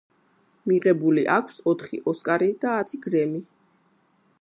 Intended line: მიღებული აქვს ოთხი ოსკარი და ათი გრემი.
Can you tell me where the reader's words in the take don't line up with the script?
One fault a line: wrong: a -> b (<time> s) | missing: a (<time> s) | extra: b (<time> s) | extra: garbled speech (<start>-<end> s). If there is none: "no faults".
no faults